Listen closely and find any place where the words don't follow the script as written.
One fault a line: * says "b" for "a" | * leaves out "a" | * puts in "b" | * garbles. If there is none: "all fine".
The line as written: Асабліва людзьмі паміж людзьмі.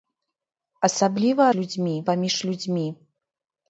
all fine